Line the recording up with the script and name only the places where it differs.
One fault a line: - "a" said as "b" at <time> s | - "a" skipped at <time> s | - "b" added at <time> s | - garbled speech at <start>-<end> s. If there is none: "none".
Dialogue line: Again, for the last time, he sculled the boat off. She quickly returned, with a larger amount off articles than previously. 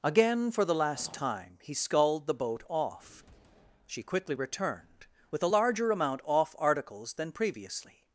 none